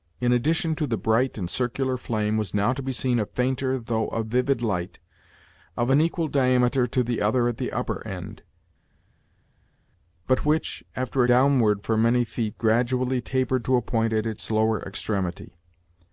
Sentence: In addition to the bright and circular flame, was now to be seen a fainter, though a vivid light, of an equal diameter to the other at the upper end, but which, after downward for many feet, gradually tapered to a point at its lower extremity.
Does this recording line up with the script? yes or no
yes